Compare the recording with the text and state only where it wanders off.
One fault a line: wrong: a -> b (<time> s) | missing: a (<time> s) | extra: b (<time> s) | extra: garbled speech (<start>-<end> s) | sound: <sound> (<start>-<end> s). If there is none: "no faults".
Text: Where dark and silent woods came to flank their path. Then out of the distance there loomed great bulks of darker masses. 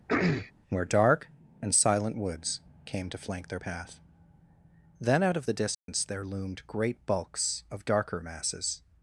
sound: throat clearing (0.1-0.5 s)
sound: dropout (5.7-5.9 s)